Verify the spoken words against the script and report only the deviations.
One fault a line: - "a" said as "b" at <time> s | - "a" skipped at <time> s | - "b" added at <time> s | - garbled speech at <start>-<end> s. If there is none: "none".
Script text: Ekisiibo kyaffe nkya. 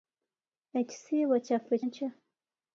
none